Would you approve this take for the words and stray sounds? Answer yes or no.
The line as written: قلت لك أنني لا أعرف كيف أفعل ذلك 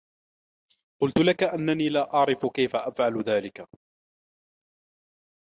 yes